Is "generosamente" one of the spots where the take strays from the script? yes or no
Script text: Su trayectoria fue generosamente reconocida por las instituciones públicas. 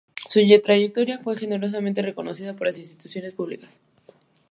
no